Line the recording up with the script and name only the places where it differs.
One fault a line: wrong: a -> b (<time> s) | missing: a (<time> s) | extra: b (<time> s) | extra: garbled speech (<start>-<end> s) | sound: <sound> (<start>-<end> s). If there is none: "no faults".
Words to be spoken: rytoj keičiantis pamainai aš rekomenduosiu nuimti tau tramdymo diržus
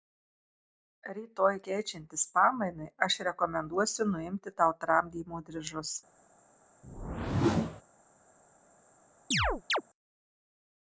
sound: whoosh (6.8-7.8 s)
sound: chirp (9.3-9.8 s)